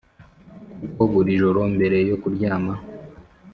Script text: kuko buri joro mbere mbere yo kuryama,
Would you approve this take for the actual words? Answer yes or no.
no